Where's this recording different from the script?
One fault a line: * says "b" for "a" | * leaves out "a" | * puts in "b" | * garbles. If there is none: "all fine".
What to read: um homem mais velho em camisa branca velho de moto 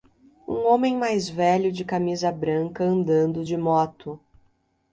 * says "de" for "em"
* says "andando" for "velho"